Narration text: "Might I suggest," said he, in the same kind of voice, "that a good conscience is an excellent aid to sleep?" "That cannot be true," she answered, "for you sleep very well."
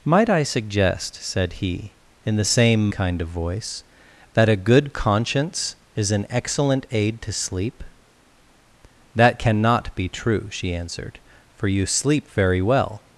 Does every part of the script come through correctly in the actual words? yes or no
yes